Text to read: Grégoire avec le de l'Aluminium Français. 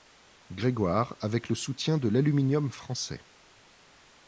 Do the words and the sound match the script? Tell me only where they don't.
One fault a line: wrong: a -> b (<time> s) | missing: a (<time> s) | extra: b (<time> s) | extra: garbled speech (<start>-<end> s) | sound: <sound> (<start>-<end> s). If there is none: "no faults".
extra: soutien (1.5 s)